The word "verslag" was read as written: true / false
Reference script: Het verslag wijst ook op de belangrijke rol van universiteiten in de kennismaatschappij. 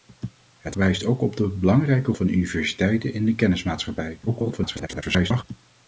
false